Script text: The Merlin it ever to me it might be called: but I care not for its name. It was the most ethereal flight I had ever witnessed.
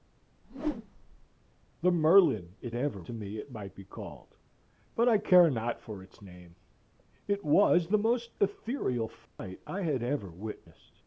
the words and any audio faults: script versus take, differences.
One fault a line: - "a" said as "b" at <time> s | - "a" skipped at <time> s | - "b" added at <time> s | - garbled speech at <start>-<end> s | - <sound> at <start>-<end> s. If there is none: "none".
- whoosh at 0.4-1.3 s
- dropout at 9.3-9.4 s